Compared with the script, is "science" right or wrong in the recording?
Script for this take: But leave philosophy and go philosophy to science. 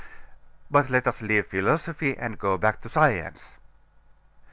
right